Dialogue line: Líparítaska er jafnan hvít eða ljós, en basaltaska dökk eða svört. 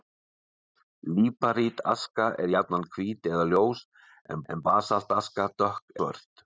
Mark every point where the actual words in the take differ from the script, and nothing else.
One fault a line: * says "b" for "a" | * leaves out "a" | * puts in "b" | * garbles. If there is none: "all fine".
* puts in "en"
* leaves out "eða"